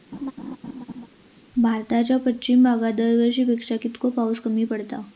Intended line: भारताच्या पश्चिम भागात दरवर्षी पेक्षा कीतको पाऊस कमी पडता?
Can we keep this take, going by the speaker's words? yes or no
yes